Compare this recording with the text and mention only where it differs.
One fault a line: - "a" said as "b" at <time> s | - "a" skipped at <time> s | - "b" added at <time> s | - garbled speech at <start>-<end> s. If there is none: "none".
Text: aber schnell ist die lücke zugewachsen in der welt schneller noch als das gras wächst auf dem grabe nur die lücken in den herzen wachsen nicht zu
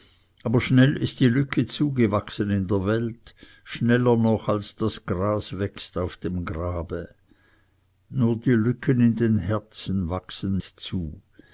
- "nicht" skipped at 10.6 s